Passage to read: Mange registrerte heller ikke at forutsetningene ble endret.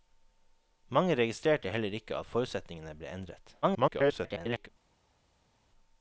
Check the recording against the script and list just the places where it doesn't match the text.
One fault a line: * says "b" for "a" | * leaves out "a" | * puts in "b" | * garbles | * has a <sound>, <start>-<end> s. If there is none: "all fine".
* garbles